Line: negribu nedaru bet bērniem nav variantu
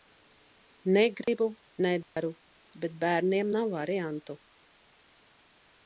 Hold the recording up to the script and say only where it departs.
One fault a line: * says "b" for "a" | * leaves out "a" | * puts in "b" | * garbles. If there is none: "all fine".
all fine